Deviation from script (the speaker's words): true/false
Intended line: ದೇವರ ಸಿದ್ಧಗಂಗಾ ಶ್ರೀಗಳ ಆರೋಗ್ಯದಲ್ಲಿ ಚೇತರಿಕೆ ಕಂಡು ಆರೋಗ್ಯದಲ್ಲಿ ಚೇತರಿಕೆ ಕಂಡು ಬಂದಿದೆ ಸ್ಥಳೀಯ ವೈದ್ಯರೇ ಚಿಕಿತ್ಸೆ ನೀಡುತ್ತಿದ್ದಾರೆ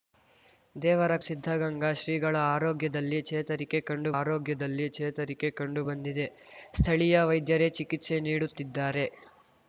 false